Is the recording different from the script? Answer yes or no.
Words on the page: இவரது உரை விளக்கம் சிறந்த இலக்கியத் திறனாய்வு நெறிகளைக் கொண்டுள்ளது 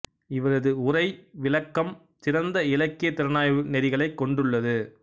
no